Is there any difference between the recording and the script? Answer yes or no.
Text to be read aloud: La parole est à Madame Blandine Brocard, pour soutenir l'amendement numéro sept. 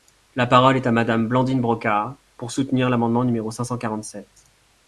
yes